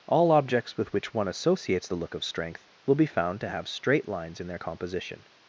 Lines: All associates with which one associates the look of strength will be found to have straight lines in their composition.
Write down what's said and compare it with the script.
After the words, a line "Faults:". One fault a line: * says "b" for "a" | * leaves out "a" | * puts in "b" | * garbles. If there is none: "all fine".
All objects with which one associates the look of strength will be found to have straight lines in their composition.
Faults:
* says "objects" for "associates"